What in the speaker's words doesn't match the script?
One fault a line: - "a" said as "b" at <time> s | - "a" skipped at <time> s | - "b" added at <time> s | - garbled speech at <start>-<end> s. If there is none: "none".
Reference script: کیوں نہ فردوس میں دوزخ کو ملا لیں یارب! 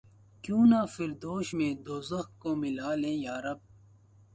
none